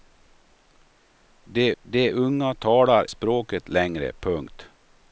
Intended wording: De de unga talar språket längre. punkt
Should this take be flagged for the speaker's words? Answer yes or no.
no